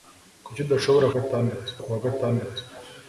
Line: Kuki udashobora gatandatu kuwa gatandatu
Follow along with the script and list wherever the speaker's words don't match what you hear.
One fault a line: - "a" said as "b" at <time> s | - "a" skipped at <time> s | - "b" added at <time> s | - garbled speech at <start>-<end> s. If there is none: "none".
none